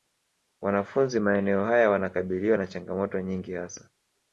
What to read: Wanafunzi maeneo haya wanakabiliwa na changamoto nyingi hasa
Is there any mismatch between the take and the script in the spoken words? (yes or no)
no